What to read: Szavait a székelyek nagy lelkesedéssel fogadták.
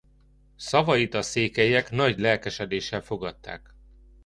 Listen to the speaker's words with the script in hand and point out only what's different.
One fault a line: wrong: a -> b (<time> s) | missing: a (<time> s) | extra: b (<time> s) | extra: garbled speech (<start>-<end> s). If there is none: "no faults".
no faults